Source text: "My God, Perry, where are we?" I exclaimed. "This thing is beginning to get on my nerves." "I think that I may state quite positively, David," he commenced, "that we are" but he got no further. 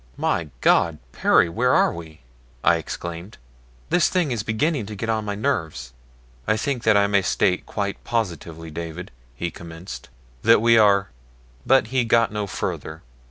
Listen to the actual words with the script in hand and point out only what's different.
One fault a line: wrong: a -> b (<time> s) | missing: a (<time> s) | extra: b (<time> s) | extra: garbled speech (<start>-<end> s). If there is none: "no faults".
no faults